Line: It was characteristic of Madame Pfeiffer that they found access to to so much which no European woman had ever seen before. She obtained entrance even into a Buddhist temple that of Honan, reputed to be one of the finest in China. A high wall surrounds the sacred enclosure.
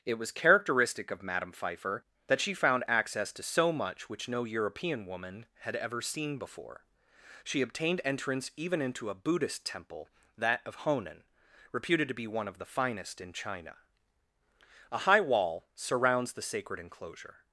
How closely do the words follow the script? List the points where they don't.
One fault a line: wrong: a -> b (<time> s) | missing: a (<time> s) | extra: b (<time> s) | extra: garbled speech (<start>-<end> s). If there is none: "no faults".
wrong: they -> she (2.4 s)
missing: to (3.4 s)